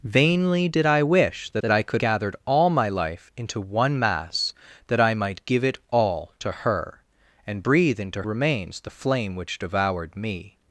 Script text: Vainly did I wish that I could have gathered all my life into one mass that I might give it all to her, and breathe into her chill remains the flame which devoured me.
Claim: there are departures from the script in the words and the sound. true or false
true